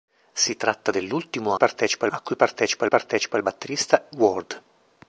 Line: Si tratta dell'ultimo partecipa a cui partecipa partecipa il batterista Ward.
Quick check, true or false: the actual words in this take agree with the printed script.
true